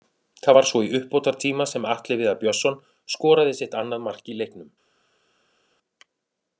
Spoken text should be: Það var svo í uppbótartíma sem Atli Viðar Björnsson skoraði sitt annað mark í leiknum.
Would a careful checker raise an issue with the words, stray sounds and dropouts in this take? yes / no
no